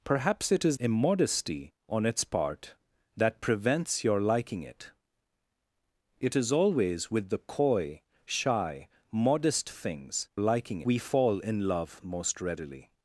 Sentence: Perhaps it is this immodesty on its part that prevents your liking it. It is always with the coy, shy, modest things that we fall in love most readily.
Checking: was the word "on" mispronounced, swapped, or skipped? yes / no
no